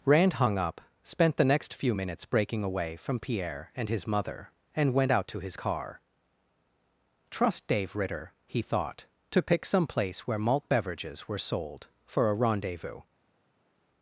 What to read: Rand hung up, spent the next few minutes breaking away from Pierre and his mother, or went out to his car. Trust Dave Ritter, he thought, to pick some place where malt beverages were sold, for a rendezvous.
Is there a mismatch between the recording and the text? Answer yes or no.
yes